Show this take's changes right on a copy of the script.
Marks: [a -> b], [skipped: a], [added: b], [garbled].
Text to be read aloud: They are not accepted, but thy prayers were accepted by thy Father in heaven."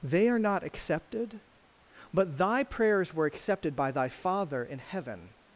They are not accepted, but thy prayers were accepted by thy Father in heaven."